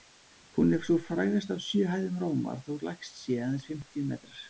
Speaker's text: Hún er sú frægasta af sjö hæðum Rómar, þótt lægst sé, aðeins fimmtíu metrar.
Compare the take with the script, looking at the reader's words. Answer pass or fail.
pass